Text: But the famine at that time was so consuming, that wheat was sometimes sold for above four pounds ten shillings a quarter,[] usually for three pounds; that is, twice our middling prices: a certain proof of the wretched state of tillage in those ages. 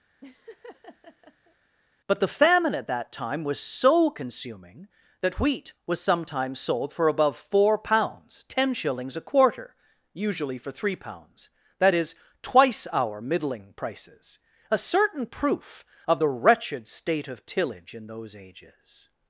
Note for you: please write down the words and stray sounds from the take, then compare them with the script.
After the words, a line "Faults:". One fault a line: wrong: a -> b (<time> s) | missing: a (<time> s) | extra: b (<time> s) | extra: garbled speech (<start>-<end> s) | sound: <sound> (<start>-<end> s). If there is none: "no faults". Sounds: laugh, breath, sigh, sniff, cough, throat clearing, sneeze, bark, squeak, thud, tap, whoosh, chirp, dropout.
But the famine at that time was so consuming, that wheat was sometimes sold for above four pounds ten shillings a quarter,[] usually for three pounds; that is, twice our middling prices: a certain proof of the wretched state of tillage in those ages.
Faults:
sound: laugh (0.2-1.6 s)